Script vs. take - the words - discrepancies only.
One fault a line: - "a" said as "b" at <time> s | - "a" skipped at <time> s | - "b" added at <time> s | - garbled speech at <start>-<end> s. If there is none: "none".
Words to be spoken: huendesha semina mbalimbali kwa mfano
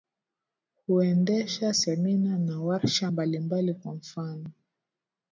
- "na warsha" added at 2.4 s